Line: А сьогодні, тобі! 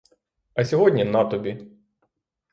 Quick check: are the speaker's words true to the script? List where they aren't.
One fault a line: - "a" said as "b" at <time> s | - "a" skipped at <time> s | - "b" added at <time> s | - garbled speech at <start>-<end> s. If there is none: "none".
- "на" added at 1.0 s